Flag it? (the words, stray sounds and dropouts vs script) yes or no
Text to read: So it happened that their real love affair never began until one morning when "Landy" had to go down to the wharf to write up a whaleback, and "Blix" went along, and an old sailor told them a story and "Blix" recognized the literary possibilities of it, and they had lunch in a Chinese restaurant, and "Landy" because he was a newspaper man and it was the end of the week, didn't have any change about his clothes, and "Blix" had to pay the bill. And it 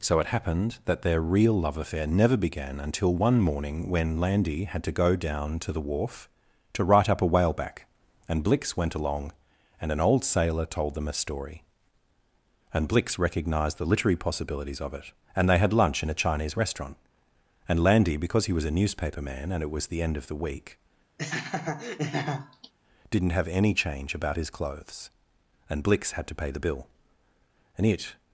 yes